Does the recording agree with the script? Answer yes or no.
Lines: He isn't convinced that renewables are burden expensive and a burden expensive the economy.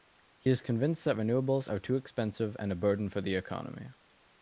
no